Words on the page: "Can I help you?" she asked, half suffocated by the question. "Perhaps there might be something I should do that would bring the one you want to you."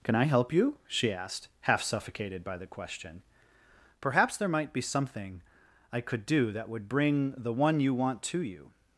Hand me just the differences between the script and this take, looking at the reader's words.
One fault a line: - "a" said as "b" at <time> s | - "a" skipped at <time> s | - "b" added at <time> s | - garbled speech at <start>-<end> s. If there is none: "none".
- "should" said as "could" at 6.0 s